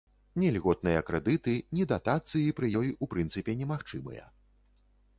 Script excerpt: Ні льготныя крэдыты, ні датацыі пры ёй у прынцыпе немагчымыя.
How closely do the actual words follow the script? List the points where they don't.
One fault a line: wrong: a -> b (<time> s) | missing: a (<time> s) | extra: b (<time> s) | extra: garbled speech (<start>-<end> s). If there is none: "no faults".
no faults